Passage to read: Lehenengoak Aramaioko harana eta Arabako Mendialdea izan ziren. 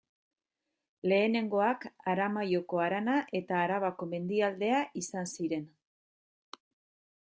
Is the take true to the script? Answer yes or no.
yes